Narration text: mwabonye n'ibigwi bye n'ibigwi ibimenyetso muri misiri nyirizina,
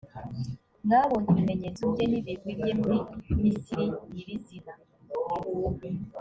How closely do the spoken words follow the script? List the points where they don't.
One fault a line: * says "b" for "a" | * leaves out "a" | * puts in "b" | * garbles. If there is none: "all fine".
* says "ibimenyetso" for "n'ibigwi"
* says "bye" for "ibimenyetso"